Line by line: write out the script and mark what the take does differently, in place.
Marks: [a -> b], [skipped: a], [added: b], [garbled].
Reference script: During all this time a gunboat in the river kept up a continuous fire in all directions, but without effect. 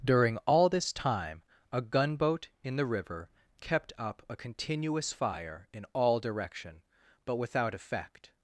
During all this time a gunboat in the river kept up a continuous fire in all [directions, -> direction] but without effect.